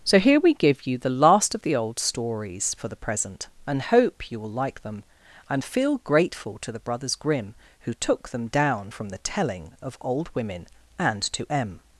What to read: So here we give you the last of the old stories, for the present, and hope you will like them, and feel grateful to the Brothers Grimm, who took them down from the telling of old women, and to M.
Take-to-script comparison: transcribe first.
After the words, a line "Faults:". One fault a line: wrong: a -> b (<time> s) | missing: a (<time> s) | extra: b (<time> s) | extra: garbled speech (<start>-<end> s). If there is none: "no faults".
So here we give you the last of the old stories, for the present, and hope you will like them, and feel grateful to the Brothers Grimm, who took them down from the telling of old women, and to M.
Faults:
no faults